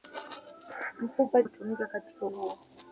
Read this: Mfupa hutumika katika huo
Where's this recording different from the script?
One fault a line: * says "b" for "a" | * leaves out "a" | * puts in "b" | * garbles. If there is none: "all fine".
all fine